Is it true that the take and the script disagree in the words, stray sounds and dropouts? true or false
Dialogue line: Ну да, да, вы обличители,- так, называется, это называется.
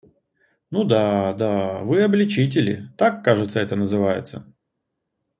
true